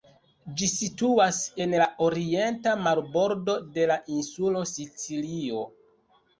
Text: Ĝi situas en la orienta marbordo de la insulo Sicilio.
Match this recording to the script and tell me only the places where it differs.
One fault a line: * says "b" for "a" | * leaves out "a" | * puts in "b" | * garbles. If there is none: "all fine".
all fine